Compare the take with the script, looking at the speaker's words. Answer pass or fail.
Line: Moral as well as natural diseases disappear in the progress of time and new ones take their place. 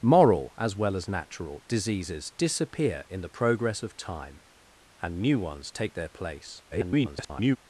fail